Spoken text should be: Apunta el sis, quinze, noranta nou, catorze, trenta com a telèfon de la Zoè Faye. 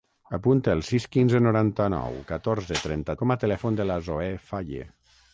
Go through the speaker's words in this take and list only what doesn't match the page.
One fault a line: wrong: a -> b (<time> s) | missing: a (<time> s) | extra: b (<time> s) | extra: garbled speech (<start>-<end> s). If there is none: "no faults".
no faults